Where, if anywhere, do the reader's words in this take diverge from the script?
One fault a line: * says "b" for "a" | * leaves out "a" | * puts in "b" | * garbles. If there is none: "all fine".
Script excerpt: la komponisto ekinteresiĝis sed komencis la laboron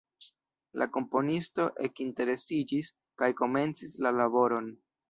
* says "kaj" for "sed"